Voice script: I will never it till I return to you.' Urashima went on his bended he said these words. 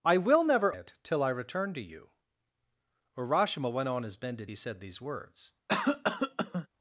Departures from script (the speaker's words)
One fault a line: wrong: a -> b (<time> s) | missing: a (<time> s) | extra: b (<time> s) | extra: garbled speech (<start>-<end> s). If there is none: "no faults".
no faults